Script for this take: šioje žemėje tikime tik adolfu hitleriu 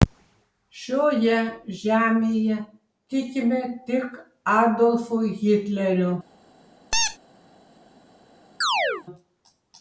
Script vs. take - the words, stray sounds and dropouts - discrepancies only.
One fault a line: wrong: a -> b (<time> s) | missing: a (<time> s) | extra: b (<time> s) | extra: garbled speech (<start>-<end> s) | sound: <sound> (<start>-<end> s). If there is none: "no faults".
sound: squeak (6.9-7.2 s)
sound: chirp (8.6-9.0 s)